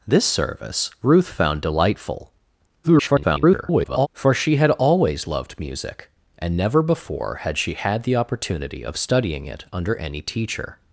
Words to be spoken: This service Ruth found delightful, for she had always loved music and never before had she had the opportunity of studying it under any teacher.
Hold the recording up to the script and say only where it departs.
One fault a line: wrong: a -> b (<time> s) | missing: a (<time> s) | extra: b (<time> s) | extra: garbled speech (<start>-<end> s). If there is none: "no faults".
extra: garbled speech (2.8-4.1 s)